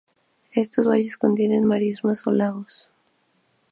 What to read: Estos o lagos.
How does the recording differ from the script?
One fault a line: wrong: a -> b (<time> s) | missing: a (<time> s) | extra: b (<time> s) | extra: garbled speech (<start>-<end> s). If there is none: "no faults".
extra: valles contienen marismas (0.9 s)